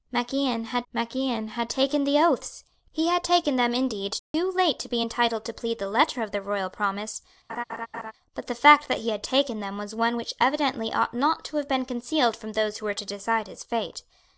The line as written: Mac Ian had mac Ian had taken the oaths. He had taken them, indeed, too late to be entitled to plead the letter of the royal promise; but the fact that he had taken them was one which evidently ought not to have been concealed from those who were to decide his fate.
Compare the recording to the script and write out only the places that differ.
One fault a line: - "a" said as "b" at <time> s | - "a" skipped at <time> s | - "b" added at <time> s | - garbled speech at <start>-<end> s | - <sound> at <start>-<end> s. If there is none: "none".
- dropout at 4.2-4.3 s
- laugh at 7.5-8.1 s